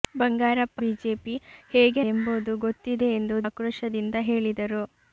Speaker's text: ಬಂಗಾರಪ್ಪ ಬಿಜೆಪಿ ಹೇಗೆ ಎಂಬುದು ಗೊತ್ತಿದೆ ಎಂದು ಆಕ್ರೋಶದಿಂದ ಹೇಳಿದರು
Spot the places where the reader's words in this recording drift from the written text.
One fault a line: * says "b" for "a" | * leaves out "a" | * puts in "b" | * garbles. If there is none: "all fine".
all fine